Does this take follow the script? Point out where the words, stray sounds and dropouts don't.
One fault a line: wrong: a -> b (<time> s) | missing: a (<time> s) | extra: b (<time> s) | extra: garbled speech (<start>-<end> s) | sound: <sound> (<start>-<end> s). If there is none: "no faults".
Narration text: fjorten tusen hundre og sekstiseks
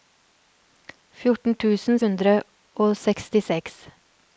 no faults